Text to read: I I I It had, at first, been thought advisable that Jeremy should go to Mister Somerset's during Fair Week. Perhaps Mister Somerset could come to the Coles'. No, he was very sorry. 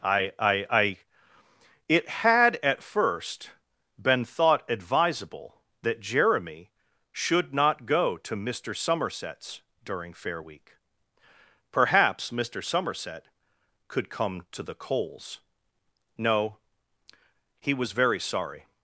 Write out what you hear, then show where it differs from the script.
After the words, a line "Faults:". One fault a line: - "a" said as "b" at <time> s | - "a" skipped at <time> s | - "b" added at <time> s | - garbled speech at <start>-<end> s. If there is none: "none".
I I I It had, at first, been thought advisable that Jeremy should not go to Mister Somerset's during Fair Week. Perhaps Mister Somerset could come to the Coles'. No, he was very sorry.
Faults:
- "not" added at 7.5 s